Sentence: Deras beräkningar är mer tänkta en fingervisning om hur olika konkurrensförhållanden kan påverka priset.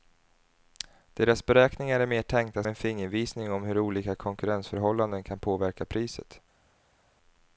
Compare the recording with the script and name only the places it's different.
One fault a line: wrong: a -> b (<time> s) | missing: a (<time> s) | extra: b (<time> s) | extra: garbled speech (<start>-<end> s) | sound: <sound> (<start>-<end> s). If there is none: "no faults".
no faults